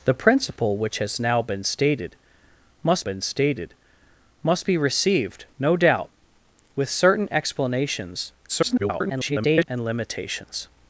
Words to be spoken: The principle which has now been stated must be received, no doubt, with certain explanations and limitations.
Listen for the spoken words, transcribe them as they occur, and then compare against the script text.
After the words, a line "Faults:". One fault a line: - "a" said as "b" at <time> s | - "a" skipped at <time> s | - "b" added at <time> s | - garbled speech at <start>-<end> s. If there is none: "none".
The principle which has now been stated must been stated must be received, no doubt, with certain explanations [garbled] and limitations.
Faults:
- "been stated must" added at 3.0 s
- garbled speech at 8.5-9.7 s